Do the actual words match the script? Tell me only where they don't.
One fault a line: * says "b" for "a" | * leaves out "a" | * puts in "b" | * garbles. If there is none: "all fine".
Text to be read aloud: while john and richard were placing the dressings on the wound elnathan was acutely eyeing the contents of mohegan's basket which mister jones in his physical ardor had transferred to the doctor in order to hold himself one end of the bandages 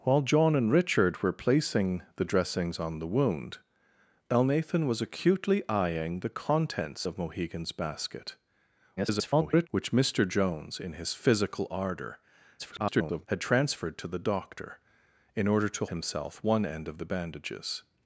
* garbles
* garbles
* leaves out "hold"